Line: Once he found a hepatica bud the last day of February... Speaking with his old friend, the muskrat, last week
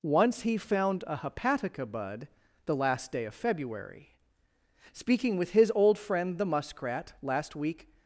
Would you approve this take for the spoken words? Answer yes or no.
yes